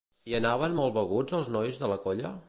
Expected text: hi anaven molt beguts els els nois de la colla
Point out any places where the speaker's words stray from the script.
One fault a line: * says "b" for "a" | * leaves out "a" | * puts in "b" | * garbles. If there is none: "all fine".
* leaves out "els"